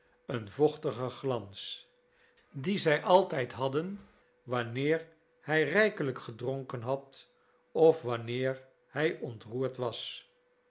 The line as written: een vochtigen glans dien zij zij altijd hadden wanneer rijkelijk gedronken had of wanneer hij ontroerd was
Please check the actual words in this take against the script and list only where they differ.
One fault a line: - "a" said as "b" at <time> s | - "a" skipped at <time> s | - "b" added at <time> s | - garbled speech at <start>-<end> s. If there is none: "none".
- "zij" skipped at 3.0 s
- "hij" added at 5.4 s